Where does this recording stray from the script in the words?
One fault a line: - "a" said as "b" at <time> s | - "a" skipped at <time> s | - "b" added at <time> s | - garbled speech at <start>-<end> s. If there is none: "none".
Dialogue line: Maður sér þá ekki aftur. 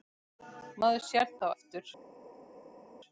- "ekki" skipped at 1.5 s